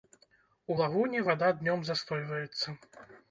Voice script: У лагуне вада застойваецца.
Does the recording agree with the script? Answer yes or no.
no